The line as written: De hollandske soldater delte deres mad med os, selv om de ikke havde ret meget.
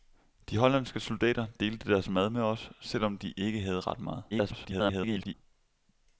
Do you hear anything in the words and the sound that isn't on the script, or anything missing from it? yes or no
yes